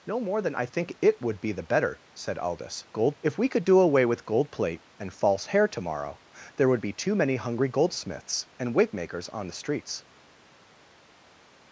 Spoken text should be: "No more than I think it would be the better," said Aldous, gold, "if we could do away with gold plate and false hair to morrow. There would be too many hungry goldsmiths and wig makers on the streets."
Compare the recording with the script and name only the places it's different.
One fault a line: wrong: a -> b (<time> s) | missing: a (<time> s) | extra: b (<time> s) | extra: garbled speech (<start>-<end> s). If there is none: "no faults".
no faults